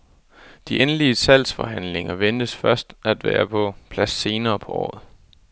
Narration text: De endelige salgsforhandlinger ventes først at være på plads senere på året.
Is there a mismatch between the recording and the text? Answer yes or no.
no